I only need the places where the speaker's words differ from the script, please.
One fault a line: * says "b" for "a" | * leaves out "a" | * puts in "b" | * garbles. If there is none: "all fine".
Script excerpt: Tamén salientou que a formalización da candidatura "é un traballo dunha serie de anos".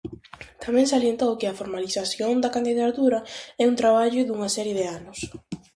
all fine